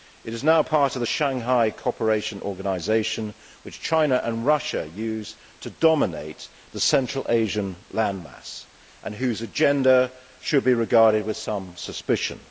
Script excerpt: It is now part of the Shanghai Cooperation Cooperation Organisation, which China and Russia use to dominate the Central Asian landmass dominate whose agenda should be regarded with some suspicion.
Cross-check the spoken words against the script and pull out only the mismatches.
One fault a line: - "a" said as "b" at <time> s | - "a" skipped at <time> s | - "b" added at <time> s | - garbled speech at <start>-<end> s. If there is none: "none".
- "Cooperation" skipped at 2.4 s
- "dominate" said as "and" at 9.0 s